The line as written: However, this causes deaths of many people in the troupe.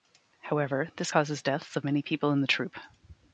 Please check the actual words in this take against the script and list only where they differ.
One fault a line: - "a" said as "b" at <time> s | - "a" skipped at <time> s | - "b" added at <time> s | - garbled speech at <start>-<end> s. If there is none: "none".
none